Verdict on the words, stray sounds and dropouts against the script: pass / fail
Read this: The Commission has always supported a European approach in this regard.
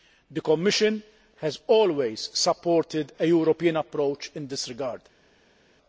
pass